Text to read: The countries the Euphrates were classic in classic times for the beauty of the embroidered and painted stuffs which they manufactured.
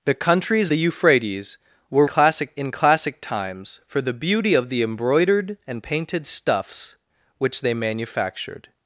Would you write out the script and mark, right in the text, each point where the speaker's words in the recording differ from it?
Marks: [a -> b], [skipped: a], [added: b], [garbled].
The countries the Euphrates were classic in classic times for the beauty of the embroidered and painted stuffs which they manufactured.